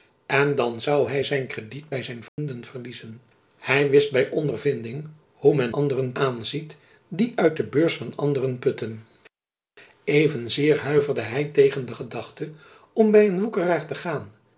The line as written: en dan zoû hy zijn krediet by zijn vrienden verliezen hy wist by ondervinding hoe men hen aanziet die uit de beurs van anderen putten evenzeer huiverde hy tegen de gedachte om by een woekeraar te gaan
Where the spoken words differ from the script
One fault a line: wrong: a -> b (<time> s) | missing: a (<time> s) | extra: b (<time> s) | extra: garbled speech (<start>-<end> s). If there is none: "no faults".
wrong: hen -> anderen (5.7 s)